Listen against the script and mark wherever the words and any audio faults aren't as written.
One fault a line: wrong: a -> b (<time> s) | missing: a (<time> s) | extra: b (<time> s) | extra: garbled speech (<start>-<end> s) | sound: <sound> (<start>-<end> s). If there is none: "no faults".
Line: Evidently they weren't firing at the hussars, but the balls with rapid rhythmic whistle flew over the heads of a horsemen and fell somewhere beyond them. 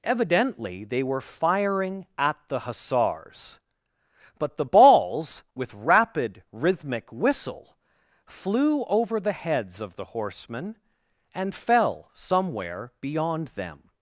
wrong: weren't -> were (1.0 s)
wrong: a -> the (10.0 s)